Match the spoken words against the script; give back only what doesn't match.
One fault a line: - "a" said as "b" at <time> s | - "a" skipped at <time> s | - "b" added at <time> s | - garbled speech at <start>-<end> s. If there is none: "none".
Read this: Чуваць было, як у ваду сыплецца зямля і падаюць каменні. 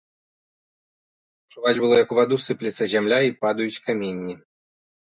none